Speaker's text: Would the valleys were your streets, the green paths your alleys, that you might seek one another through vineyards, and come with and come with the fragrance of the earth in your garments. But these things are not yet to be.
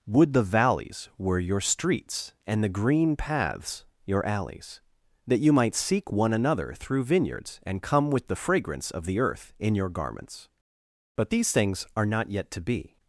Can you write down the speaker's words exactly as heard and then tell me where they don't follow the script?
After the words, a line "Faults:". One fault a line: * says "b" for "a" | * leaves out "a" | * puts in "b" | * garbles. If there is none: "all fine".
Would the valleys were your streets, and the green paths your alleys, that you might seek one another through vineyards, and come with the fragrance of the earth in your garments. But these things are not yet to be.
Faults:
* puts in "and"
* leaves out "and come with"